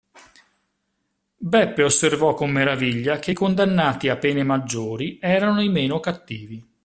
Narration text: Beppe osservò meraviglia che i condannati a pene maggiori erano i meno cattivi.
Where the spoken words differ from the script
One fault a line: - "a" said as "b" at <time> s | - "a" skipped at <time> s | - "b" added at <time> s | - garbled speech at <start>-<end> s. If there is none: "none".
- "con" added at 2.3 s